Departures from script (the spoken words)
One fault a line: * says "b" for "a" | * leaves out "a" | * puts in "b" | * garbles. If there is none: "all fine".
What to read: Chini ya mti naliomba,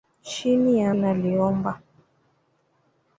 * leaves out "mti"